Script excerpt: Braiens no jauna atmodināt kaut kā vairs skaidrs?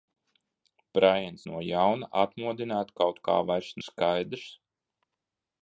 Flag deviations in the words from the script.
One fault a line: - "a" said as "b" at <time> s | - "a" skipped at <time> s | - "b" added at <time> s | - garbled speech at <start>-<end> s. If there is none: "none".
none